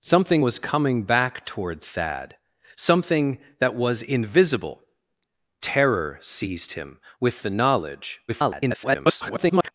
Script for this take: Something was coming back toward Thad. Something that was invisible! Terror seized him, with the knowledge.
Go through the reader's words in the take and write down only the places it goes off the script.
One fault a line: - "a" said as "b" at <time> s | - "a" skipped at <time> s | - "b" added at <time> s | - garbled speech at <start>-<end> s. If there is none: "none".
- garbled speech at 8.3-9.7 s